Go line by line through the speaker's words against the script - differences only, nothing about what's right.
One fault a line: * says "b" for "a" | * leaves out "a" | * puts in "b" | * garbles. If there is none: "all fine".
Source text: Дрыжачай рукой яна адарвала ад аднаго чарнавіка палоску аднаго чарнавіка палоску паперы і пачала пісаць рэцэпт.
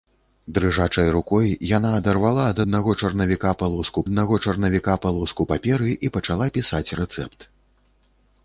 all fine